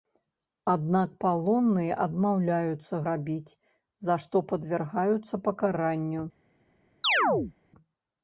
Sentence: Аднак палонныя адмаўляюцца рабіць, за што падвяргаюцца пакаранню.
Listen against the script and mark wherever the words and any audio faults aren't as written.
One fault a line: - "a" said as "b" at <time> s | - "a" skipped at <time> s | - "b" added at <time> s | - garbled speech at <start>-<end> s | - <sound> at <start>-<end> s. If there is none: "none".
- chirp at 7.0-7.5 s